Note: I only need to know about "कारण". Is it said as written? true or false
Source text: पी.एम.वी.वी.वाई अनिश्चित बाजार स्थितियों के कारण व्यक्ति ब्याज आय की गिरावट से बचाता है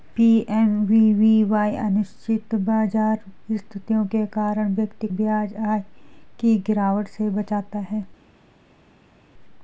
true